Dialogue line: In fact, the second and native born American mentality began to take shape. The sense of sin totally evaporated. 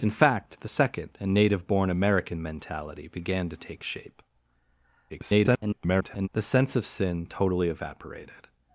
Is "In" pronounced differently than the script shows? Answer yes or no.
no